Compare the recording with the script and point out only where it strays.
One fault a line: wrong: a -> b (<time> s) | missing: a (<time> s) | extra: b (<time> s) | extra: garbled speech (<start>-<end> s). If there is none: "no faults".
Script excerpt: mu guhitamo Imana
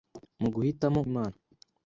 no faults